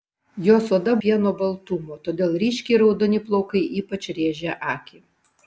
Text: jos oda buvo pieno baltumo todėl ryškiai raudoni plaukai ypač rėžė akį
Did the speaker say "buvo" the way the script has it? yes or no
no